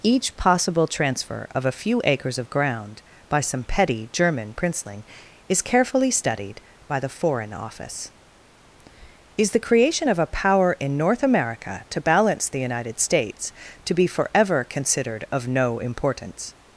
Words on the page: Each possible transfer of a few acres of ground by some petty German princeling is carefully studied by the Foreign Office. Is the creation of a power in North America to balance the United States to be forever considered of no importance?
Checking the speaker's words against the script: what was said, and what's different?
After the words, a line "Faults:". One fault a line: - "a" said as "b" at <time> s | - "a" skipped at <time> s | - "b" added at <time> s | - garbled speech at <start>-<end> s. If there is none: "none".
Each possible transfer of a few acres of ground by some petty German princeling is carefully studied by the Foreign Office. Is the creation of a power in North America to balance the United States to be forever considered of no importance?
Faults:
none